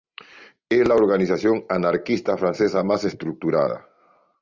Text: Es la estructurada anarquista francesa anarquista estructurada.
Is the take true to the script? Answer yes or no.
no